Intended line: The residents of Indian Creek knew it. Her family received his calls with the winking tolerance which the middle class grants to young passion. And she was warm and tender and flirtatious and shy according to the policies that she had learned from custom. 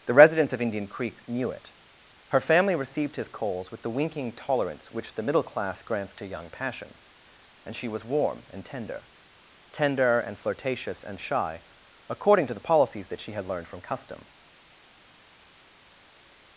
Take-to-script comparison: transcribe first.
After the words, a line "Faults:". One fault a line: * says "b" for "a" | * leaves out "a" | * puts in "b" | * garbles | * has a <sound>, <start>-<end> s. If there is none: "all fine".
The residents of Indian Creek knew it. Her family received his calls with the winking tolerance which the middle class grants to young passion. And she was warm and tender tender and flirtatious and shy according to the policies that she had learned from custom.
Faults:
* puts in "tender"